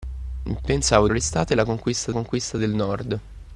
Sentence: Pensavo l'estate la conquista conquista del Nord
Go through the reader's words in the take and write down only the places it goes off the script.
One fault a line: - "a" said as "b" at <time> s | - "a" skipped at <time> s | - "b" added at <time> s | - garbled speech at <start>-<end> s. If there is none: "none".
none